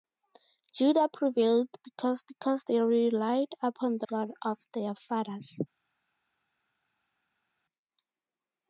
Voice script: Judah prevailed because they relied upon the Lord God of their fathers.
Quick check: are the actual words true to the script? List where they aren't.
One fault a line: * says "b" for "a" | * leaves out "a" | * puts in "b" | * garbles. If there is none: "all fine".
* puts in "because"
* leaves out "Lord"